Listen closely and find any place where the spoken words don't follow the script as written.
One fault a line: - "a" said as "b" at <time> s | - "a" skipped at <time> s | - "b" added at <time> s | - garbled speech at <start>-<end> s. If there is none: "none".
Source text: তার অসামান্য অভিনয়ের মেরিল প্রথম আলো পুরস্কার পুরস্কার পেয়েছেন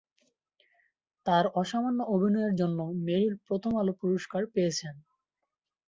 - "জন্য" added at 2.5 s
- "পুরস্কার" skipped at 4.4 s